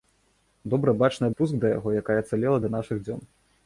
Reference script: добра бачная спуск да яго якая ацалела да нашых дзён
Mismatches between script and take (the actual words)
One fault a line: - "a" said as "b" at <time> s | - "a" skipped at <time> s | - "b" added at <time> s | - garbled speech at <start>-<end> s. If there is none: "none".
none